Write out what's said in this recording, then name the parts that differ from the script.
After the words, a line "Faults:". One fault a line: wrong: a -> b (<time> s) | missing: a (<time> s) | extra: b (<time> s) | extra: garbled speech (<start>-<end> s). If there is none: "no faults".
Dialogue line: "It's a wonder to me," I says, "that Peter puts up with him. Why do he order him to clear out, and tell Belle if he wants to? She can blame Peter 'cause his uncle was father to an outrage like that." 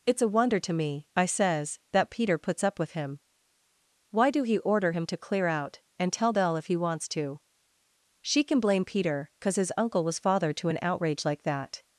"It's a wonder to me," I says, "that Peter puts up with him. Why do he order him to clear out, and tell Belle if he wants to? She can blame Peter 'cause his uncle was father to an outrage like that."
Faults:
no faults